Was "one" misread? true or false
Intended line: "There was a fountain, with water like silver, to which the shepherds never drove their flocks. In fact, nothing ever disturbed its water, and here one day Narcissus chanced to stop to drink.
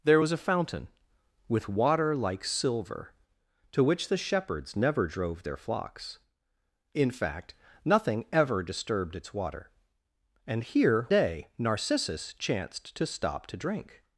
true